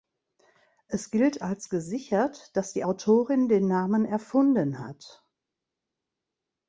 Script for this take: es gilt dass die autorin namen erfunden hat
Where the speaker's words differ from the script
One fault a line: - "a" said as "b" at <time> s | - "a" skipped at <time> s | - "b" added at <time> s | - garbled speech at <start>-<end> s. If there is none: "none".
- "als gesichert" added at 1.4 s
- "den" added at 3.5 s